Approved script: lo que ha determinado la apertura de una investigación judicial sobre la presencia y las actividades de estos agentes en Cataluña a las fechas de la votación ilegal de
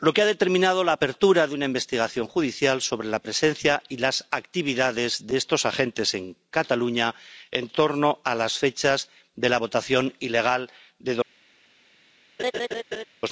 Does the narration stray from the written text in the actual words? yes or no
yes